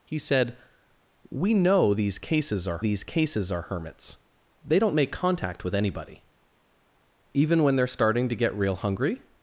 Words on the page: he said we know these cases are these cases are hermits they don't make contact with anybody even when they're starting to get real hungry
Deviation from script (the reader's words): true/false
false